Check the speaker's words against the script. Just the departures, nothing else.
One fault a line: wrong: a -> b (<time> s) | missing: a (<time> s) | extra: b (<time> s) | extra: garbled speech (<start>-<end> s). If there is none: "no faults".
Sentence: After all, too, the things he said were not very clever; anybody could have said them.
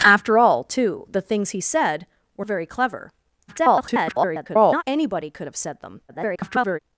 missing: not (2.5 s)
extra: garbled speech (3.5-4.8 s)
extra: garbled speech (6.1-6.8 s)